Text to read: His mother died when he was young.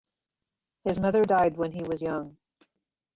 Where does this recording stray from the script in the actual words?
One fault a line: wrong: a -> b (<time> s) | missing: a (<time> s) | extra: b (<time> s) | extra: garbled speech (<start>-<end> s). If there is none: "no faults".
no faults